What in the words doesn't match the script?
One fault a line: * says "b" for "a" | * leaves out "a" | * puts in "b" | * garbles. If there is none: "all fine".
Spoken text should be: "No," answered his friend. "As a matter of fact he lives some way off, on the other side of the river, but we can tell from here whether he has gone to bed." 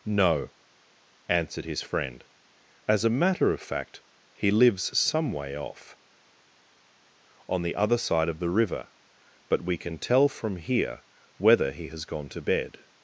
all fine